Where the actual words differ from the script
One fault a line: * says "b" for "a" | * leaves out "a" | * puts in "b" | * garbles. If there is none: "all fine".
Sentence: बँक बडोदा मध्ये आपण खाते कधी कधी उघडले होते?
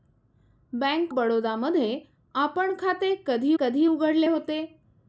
all fine